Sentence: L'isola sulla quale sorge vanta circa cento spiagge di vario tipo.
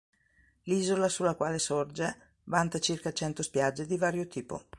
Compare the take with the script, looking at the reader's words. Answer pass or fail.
pass